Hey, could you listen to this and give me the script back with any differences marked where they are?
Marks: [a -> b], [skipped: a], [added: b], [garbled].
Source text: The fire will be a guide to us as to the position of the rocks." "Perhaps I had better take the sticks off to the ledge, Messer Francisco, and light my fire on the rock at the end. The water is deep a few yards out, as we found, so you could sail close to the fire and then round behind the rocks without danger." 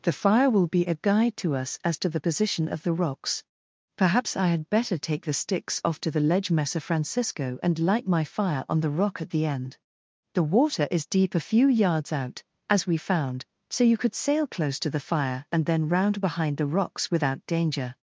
The fire will be a guide to us as to the position of the rocks." "Perhaps I had better take the sticks off to the ledge, Messer Francisco, and light my fire on the rock at the end. The water is deep a few yards out, as we found, so you could sail close to the fire and then round behind the rocks without danger."